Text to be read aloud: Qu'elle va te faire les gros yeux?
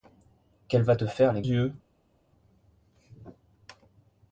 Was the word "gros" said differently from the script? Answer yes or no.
yes